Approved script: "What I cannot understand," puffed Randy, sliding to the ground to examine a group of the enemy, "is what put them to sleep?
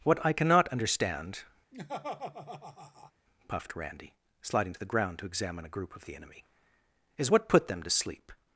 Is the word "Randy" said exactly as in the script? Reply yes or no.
yes